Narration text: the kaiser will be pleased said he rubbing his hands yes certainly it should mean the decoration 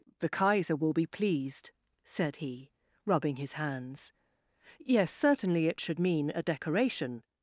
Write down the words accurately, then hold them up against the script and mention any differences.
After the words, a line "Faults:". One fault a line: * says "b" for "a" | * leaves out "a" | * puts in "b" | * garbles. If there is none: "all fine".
the kaiser will be pleased said he rubbing his hands yes certainly it should mean a decoration
Faults:
* says "a" for "the"